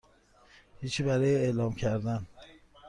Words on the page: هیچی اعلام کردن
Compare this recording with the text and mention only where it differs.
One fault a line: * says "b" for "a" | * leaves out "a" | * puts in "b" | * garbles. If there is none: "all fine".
* puts in "برای"